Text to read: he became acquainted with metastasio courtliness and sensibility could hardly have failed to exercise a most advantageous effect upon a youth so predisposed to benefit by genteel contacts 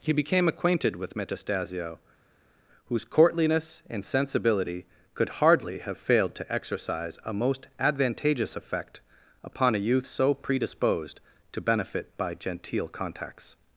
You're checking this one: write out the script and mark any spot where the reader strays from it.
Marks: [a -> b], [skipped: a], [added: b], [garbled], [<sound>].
he became acquainted with metastasio [added: whose] courtliness and sensibility could hardly have failed to exercise a most advantageous effect upon a youth so predisposed to benefit by genteel contacts